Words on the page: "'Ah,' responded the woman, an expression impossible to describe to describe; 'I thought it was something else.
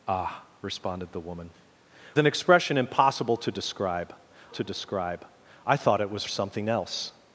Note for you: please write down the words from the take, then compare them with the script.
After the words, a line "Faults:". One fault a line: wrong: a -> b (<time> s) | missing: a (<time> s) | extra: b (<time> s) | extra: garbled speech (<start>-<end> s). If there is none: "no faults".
"'Ah,' responded the woman, an expression impossible to describe to describe; 'I thought it was something else.
Faults:
no faults